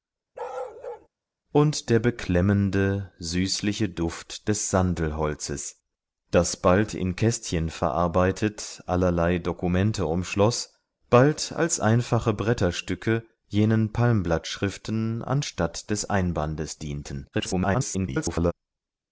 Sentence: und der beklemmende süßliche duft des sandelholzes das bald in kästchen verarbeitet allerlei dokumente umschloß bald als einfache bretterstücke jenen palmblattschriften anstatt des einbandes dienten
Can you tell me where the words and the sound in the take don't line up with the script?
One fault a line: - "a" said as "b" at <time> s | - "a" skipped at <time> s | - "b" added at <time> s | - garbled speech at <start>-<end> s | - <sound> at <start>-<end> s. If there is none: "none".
- bark at 0.3-1.1 s
- garbled speech at 17.3-18.5 s